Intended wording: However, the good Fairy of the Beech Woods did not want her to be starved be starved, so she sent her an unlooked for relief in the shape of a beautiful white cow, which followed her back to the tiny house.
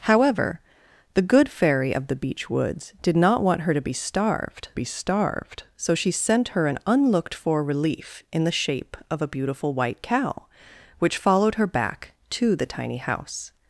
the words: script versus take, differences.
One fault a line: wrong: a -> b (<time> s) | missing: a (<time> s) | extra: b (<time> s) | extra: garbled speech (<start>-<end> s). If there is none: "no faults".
no faults